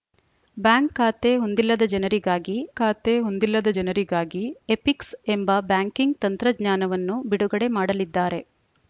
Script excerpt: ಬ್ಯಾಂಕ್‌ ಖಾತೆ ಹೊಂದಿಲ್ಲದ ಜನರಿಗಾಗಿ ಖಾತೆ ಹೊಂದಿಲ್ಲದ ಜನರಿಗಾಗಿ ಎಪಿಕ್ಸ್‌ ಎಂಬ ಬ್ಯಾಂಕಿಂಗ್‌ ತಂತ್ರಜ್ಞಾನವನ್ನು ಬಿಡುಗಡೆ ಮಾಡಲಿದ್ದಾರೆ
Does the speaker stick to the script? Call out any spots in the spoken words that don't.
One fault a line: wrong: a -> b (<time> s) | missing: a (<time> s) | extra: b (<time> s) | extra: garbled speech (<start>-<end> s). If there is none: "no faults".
no faults